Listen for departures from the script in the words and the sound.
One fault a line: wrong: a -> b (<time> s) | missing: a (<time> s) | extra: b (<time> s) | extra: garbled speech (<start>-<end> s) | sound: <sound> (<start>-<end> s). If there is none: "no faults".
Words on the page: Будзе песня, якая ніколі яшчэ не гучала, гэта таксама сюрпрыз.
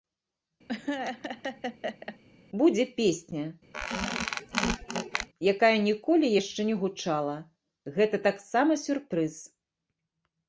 sound: laugh (0.7-2.2 s)
sound: squeak (3.7-5.3 s)